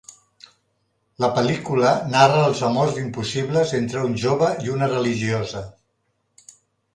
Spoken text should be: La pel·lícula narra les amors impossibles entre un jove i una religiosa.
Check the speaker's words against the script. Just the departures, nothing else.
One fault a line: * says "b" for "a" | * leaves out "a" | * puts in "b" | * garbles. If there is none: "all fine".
* says "els" for "les"